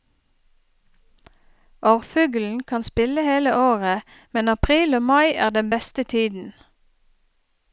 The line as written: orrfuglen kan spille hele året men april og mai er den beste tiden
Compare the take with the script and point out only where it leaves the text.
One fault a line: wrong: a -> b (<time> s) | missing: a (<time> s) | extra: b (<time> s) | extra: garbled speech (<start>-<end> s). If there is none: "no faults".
no faults